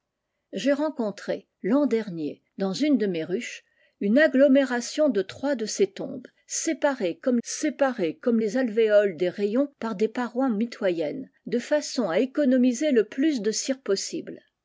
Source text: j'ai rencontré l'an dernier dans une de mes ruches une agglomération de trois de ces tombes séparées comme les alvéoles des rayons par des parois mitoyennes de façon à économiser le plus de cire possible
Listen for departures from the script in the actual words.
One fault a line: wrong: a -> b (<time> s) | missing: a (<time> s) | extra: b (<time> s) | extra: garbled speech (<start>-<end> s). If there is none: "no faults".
extra: séparées comme (7.4 s)